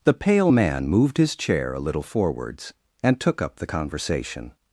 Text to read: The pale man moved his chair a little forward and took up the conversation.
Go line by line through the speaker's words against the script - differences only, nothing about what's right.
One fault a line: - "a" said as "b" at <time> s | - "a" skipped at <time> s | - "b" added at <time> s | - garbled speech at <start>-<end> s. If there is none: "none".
- "forward" said as "forwards" at 2.0 s